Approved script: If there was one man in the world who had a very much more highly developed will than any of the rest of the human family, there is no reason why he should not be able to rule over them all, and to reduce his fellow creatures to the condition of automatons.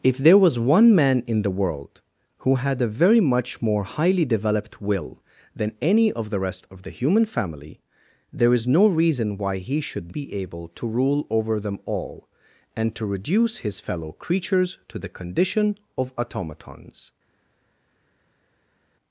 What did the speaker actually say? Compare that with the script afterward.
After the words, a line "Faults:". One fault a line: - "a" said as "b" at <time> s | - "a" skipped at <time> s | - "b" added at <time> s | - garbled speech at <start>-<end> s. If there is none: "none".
If there was one man in the world who had a very much more highly developed will than any of the rest of the human family, there is no reason why he should be able to rule over them all, and to reduce his fellow creatures to the condition of automatons.
Faults:
- "not" skipped at 10.2 s